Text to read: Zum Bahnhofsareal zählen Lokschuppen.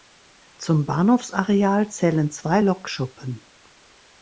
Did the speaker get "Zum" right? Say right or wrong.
right